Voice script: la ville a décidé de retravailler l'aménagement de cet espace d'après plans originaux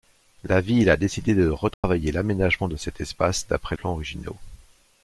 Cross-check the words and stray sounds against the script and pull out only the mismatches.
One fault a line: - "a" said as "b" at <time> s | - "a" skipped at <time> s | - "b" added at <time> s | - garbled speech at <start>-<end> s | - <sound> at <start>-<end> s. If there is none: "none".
- dropout at 1.7-1.8 s